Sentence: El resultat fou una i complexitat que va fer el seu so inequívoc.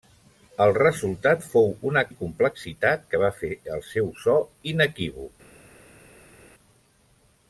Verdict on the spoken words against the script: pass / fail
pass